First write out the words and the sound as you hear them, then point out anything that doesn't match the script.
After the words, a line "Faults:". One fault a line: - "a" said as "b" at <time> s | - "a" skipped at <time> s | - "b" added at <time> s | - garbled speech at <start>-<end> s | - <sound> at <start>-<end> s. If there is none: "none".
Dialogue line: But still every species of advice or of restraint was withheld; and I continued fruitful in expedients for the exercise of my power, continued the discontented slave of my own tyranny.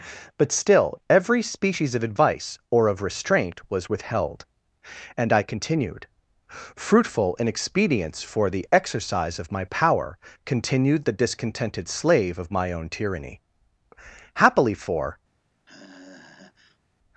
But still every species of advice or of restraint was withheld; and I continued fruitful in expedients for the exercise of my power, continued the discontented slave of my own tyranny. Happily for
Faults:
- "Happily for" added at 14.3 s
- sigh at 15.7-16.8 s